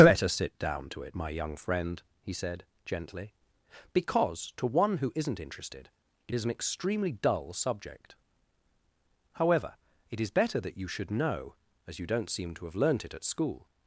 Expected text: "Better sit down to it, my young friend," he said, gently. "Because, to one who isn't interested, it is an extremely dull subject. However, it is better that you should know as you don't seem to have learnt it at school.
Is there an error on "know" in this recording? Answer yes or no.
no